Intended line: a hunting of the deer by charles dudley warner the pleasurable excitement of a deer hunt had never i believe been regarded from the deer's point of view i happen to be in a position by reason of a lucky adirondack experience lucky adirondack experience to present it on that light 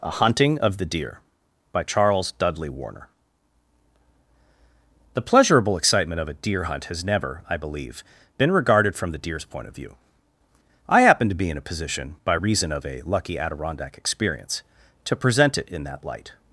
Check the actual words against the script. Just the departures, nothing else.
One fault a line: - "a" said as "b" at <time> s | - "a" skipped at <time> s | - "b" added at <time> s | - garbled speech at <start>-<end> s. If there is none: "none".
- "had" said as "has" at 6.9 s
- "lucky adirondack experience" skipped at 14.6 s
- "on" said as "in" at 15.7 s